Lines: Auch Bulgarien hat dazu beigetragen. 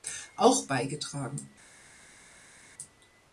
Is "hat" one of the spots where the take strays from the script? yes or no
yes